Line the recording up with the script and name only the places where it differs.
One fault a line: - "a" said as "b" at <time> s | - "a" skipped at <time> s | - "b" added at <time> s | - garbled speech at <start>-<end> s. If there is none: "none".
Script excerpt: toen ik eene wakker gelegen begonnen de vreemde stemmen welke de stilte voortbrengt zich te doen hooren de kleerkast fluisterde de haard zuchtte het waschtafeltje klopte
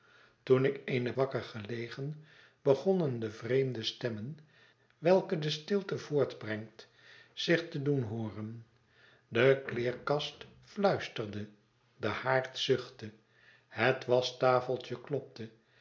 none